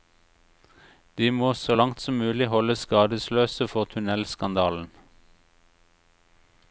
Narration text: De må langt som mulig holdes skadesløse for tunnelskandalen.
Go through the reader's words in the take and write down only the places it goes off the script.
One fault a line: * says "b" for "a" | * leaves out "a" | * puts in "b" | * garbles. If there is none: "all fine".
* puts in "så"